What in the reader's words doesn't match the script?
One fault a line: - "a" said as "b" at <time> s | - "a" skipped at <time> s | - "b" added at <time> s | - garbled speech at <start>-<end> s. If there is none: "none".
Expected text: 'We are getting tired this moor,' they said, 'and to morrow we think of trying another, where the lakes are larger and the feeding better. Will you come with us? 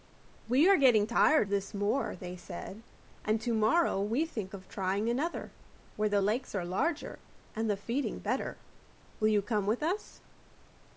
none